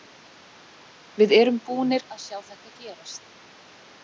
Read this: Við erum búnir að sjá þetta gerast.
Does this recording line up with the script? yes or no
yes